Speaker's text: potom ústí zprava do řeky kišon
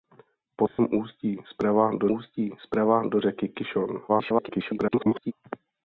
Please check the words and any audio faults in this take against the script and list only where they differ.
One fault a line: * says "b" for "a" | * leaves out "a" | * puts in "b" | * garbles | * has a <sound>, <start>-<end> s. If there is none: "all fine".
* has a dropout, 0.7-0.8 s
* puts in "ústí zprava do"
* garbles